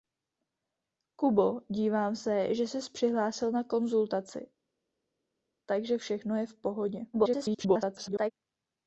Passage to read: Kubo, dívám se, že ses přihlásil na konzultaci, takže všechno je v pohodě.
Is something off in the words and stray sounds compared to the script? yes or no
yes